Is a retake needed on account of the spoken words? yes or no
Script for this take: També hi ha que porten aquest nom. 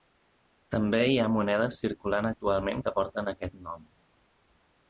yes